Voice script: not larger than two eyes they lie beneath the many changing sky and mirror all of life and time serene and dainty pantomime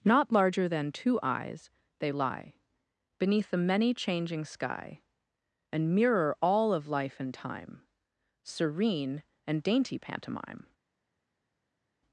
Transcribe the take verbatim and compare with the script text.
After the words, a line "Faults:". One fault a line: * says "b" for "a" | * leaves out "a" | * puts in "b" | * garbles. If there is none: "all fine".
not larger than two eyes they lie beneath the many changing sky and mirror all of life and time serene and dainty pantomime
Faults:
all fine